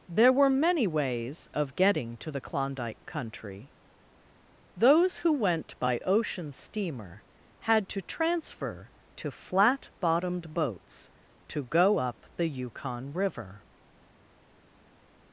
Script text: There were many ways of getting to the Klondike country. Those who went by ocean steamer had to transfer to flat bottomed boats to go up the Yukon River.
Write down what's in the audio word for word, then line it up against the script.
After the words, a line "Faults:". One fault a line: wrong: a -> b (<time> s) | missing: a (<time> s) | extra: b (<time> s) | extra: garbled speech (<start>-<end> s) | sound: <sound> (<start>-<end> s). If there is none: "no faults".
There were many ways of getting to the Klondike country. Those who went by ocean steamer had to transfer to flat bottomed boats to go up the Yukon River.
Faults:
no faults